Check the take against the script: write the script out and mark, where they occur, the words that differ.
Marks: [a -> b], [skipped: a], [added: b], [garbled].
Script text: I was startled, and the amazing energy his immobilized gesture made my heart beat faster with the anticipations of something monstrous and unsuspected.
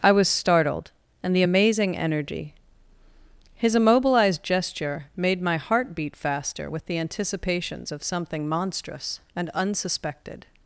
I was startled, and the amazing energy his immobilized gesture made my heart beat faster with the anticipations of something monstrous and unsuspected.